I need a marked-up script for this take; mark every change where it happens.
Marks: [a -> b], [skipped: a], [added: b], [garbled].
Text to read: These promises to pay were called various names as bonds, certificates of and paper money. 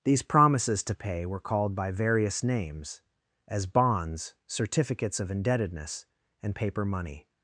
These promises to pay were called [added: by] various names as bonds, certificates of [added: indebtedness] and paper money.